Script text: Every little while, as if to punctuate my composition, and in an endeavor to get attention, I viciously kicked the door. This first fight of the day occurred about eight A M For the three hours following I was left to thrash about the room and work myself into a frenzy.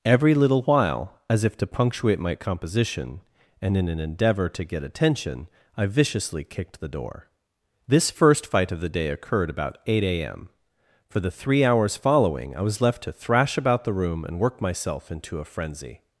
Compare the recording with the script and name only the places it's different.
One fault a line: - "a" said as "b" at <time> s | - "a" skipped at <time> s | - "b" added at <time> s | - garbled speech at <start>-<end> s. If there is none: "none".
none